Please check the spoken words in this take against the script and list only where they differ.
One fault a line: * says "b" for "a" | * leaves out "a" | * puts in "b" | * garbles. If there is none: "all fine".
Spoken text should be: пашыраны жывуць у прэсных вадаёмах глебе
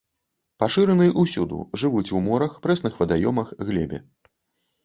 * puts in "ўсюды"
* puts in "морах"